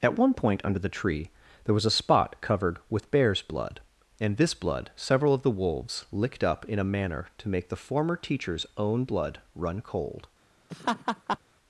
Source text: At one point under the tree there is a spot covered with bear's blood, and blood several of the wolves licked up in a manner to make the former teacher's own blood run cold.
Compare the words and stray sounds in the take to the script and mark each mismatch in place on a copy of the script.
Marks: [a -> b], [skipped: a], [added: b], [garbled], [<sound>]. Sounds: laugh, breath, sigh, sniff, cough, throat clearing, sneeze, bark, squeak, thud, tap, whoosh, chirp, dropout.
At one point under the tree there [is -> was] a spot covered with bear's blood, and [added: this] blood several of the wolves licked up in a manner to make the former teacher's own blood run cold. [laugh]